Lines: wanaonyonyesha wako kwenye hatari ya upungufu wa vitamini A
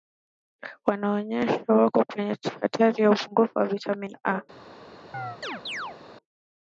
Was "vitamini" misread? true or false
false